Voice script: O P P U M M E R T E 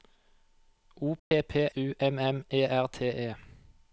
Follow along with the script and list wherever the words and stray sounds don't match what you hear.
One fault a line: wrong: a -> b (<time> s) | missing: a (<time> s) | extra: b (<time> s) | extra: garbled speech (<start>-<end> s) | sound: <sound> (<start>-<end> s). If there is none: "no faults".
sound: dropout (1.2-1.3 s)